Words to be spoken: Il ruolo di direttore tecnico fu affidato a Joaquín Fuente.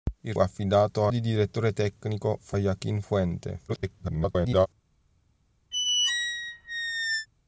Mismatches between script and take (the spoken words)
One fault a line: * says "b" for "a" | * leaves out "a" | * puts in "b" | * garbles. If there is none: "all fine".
* says "affidato" for "ruolo"
* leaves out "affidato"
* garbles